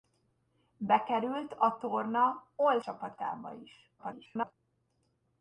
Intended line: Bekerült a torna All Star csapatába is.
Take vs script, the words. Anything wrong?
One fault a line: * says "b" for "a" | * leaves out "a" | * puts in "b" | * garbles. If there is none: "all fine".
* leaves out "Star"
* garbles